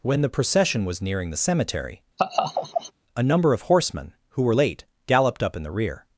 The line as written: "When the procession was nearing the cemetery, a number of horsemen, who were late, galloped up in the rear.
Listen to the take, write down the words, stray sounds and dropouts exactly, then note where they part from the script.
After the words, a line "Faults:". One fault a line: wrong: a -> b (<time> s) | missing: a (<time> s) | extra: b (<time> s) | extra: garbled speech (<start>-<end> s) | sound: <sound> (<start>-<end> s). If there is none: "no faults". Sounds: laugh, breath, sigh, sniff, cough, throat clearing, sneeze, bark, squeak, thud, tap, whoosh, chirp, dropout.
"When the procession was nearing the cemetery, a number of horsemen, who were late, galloped up in the rear.
Faults:
sound: laugh (2.2-2.9 s)